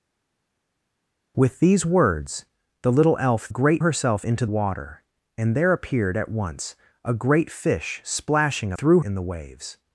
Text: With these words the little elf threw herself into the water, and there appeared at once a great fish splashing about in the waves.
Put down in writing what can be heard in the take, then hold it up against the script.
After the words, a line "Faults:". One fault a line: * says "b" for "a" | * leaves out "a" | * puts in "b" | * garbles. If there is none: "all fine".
With these words the little elf great herself into water, and there appeared at once a great fish splashing threw in the waves.
Faults:
* says "great" for "threw"
* leaves out "the"
* says "threw" for "about"